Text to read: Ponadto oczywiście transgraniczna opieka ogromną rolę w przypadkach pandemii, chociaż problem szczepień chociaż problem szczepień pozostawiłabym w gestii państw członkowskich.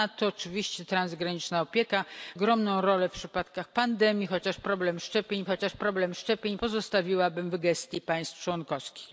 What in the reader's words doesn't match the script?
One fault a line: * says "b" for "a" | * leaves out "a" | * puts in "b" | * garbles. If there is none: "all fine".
all fine